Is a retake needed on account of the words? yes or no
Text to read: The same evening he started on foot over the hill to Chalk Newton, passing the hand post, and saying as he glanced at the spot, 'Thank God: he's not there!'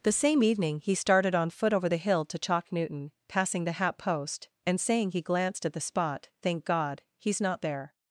yes